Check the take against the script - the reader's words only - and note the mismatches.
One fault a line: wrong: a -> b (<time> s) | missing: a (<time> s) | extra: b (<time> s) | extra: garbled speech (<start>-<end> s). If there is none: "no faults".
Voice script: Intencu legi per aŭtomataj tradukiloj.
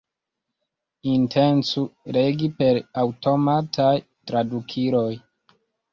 no faults